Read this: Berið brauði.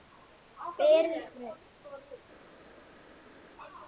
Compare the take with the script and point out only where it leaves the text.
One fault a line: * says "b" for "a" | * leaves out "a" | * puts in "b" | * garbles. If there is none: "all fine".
all fine